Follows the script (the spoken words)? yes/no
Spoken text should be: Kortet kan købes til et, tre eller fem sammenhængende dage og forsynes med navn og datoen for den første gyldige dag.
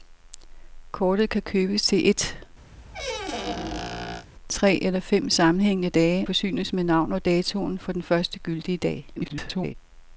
no